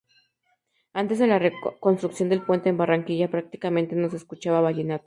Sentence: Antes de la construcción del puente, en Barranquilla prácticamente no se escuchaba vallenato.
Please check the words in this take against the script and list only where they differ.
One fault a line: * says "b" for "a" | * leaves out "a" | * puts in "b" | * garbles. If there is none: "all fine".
all fine